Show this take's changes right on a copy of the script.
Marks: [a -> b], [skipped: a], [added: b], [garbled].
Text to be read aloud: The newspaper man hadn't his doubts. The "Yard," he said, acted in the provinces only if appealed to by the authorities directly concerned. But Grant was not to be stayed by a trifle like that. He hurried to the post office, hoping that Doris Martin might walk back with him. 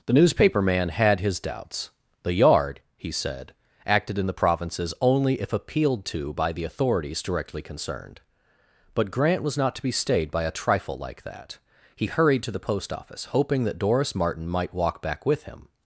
The newspaper man [hadn't -> had] his doubts. The "Yard," he said, acted in the provinces only if appealed to by the authorities directly concerned. But Grant was not to be stayed by a trifle like that. He hurried to the post office, hoping that Doris Martin might walk back with him.